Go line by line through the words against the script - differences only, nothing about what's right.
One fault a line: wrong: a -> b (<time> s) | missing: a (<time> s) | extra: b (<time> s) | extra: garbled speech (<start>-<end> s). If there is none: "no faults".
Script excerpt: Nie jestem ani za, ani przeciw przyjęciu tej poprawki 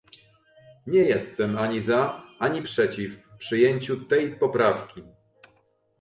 no faults